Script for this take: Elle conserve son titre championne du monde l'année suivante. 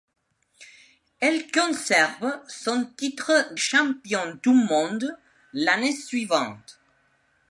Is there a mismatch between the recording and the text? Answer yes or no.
no